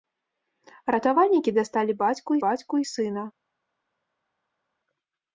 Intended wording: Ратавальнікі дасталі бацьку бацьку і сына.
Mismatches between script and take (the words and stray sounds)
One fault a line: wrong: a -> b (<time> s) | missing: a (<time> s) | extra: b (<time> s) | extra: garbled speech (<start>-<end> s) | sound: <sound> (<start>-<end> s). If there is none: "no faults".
no faults